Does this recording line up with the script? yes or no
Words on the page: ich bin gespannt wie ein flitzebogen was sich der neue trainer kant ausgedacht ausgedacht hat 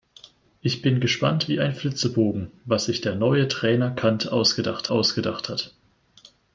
yes